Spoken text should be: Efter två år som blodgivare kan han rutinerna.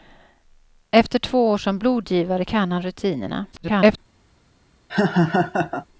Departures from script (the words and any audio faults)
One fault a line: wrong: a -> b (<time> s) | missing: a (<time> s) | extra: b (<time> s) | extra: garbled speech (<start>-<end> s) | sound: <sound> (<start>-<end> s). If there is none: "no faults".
extra: garbled speech (3.5-4.0 s)
sound: laugh (4.9-5.9 s)